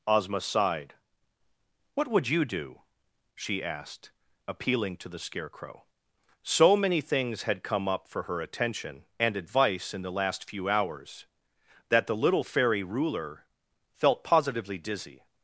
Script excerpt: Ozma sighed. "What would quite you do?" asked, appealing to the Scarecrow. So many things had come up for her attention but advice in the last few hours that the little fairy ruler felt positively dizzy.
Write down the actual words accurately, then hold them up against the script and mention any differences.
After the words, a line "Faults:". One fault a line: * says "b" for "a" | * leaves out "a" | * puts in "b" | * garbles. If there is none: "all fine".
Ozma sighed. "What would you do?" she asked, appealing to the Scarecrow. So many things had come up for her attention and advice in the last few hours that the little fairy ruler felt positively dizzy.
Faults:
* leaves out "quite"
* puts in "she"
* says "and" for "but"